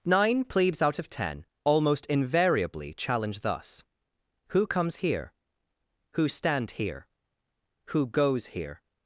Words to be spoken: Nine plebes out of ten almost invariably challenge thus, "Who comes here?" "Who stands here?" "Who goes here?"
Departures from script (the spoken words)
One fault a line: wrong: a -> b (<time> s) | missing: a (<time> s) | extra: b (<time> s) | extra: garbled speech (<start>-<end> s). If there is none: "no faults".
wrong: stands -> stand (6.3 s)